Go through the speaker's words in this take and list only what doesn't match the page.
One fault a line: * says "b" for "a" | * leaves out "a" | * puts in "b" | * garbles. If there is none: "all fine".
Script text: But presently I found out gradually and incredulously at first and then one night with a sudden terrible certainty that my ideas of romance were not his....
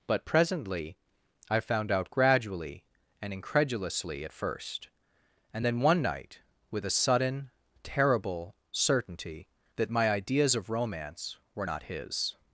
all fine